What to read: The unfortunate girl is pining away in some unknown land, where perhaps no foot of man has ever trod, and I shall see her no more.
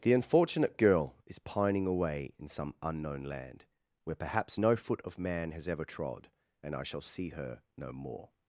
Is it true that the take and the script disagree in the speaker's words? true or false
false